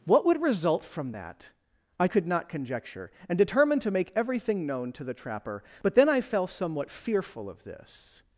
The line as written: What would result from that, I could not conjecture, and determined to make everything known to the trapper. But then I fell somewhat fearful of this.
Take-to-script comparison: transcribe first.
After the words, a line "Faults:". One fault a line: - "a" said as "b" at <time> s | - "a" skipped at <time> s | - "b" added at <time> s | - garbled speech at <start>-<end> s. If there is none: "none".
What would result from that, I could not conjecture, and determined to make everything known to the trapper. But then I fell somewhat fearful of this.
Faults:
none